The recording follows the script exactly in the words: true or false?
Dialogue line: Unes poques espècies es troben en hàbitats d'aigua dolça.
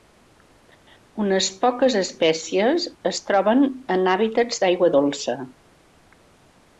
true